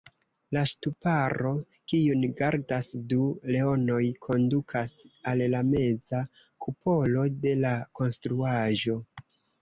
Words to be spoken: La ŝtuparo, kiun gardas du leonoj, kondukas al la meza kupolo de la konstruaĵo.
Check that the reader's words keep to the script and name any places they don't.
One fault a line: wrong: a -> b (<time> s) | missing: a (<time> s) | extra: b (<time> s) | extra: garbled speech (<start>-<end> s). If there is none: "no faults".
no faults